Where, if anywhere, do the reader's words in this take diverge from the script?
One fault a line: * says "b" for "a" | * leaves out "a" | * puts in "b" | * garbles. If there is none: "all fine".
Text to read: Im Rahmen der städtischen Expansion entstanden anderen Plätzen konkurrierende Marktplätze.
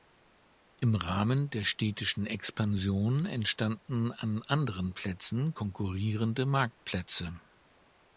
* puts in "an"